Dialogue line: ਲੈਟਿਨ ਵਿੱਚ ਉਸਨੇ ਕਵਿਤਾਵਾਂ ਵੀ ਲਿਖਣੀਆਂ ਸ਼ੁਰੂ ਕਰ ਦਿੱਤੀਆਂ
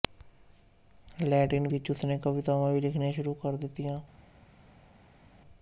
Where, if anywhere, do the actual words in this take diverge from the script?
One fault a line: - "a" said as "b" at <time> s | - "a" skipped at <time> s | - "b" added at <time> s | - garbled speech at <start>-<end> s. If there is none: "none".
none